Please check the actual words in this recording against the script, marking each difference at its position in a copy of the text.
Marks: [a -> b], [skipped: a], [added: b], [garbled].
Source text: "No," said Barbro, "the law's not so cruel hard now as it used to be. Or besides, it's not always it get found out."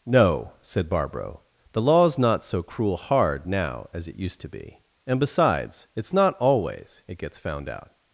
"No," said Barbro, "the law's not so cruel hard now as it used to be. [Or -> And] besides, it's not always it [get -> gets] found out."